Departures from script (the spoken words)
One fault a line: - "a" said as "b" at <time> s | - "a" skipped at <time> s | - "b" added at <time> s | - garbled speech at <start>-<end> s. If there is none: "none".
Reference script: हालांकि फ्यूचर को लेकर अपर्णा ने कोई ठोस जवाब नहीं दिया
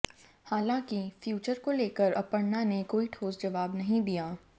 none